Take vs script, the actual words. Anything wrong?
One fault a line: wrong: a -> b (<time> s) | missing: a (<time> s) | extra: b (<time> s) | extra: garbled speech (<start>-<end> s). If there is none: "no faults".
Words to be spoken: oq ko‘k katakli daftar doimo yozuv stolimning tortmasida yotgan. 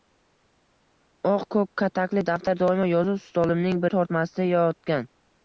no faults